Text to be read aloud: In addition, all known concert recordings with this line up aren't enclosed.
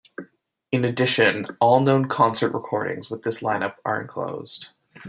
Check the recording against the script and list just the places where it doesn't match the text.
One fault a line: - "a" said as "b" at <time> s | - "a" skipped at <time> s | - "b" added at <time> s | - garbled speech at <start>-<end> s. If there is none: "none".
- "aren't" said as "are" at 3.9 s